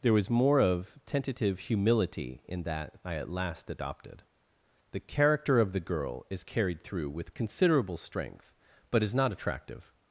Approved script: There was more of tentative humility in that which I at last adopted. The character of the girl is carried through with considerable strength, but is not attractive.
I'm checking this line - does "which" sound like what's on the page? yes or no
no